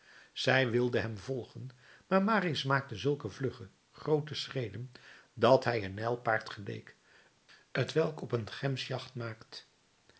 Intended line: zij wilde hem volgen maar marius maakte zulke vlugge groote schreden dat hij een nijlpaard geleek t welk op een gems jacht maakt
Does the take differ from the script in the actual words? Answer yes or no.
no